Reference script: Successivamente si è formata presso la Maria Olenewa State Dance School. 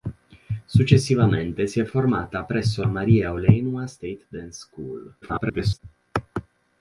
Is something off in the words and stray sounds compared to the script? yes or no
yes